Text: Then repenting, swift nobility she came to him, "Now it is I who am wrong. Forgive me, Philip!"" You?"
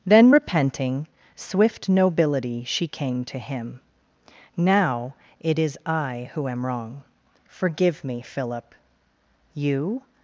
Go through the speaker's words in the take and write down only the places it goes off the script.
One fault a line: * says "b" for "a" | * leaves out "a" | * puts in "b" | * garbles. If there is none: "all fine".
all fine